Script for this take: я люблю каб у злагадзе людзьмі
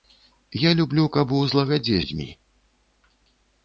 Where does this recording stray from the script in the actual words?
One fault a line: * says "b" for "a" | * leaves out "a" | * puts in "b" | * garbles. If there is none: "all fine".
all fine